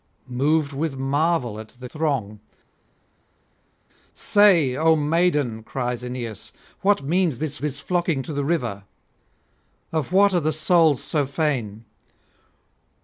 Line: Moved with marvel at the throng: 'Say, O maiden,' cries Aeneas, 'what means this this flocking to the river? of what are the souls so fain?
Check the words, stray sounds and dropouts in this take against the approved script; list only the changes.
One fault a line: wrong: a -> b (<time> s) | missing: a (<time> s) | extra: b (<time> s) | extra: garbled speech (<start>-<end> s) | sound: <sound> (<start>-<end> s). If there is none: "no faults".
no faults